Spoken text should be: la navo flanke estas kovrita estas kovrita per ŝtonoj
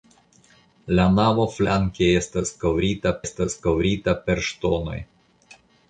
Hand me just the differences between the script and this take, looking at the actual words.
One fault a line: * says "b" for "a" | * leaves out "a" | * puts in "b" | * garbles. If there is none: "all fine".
all fine